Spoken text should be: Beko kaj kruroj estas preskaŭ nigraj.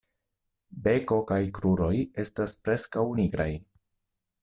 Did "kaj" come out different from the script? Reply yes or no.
no